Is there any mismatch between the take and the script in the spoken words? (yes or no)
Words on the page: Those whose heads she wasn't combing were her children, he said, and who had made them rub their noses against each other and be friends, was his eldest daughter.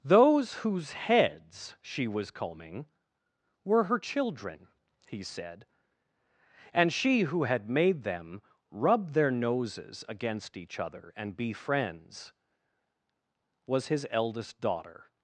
yes